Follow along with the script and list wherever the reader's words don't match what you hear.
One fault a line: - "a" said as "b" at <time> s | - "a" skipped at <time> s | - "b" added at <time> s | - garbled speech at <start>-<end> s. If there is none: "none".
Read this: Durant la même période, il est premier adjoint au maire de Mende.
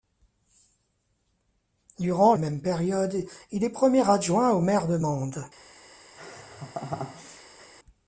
- "la" skipped at 2.3 s